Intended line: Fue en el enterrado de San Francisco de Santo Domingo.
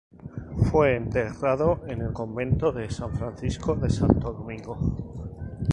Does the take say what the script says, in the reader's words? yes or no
no